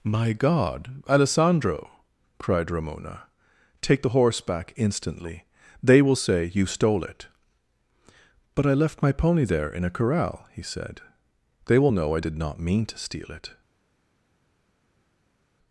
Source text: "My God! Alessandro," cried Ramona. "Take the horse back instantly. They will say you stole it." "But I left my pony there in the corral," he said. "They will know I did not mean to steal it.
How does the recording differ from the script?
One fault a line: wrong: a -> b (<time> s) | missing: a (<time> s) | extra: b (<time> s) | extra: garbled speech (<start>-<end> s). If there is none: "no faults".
wrong: the -> a (9.8 s)